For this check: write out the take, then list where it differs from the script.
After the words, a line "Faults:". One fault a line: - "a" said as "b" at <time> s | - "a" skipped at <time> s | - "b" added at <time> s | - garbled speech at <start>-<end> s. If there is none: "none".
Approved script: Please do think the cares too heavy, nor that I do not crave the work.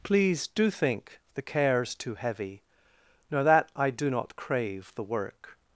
Please do think the cares too heavy, nor that I do not crave the work.
Faults:
none